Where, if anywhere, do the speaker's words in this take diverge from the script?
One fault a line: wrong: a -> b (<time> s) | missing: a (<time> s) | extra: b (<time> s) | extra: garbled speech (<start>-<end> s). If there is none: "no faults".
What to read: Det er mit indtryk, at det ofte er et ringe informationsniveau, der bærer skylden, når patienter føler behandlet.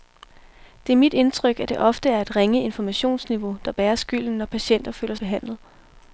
no faults